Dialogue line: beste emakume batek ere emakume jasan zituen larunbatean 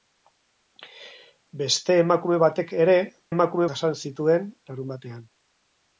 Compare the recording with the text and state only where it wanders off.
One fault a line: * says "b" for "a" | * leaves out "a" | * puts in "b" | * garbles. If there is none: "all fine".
all fine